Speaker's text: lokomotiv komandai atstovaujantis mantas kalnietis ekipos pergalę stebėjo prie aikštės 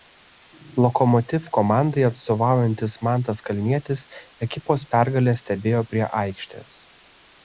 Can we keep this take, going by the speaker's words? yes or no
yes